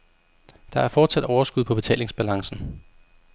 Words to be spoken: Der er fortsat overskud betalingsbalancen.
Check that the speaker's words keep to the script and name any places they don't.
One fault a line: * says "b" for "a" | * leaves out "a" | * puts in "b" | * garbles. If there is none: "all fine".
* puts in "på"